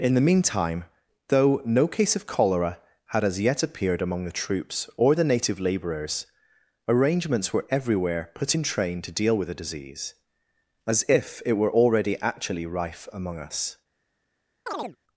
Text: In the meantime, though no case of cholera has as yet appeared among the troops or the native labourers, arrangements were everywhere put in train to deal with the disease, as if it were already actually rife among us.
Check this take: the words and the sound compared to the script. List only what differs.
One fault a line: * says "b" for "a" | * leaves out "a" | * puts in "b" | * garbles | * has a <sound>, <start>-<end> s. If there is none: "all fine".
* says "had" for "has"
* has a chirp, 14.7-15.0 s